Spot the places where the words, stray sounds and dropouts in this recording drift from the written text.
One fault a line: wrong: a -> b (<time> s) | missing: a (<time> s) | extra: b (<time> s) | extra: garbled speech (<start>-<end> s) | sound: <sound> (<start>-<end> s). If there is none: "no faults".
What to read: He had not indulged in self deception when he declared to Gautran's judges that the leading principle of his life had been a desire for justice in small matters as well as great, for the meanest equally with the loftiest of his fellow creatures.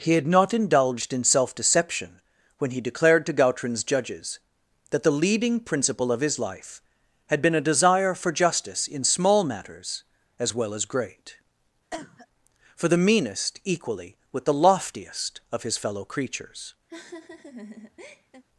sound: cough (11.9-12.3 s)
sound: laugh (16.9-18.4 s)